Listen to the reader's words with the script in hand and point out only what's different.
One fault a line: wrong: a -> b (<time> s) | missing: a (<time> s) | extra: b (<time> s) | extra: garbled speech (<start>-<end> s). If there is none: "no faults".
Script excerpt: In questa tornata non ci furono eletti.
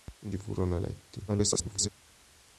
missing: questa tornata non (0.3 s)
extra: garbled speech (1.3-1.9 s)